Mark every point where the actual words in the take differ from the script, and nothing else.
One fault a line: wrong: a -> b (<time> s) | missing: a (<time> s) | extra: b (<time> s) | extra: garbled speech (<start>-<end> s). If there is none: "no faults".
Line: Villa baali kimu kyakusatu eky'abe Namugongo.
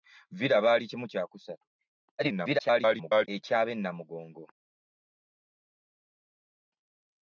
extra: garbled speech (2.2-3.3 s)